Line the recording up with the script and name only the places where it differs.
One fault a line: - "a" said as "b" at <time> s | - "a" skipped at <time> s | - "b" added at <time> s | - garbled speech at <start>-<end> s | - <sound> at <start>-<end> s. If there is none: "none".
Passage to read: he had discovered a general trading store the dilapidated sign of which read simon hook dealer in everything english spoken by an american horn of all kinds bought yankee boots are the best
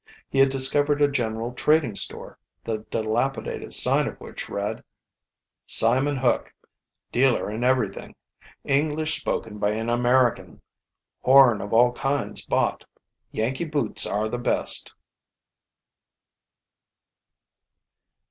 none